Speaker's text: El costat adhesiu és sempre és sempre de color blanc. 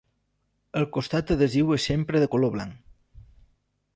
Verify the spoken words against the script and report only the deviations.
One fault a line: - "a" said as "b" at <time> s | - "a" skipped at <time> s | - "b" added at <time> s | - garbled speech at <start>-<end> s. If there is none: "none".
- "és sempre" skipped at 2.2 s